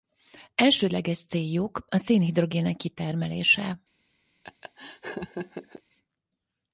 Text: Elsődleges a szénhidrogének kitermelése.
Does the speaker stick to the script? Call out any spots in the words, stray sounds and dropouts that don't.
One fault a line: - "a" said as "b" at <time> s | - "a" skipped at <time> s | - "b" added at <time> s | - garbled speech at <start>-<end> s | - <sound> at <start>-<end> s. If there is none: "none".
- "céljuk" added at 1.2 s
- laugh at 4.4-5.8 s